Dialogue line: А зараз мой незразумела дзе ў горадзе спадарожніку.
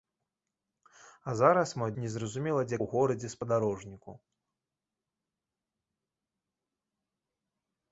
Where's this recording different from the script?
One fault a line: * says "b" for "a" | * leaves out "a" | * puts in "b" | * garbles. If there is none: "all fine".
all fine